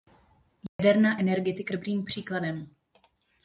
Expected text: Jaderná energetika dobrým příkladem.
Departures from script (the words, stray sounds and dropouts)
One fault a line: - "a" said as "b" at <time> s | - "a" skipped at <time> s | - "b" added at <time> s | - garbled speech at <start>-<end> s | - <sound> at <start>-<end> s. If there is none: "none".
- dropout at 0.7-0.8 s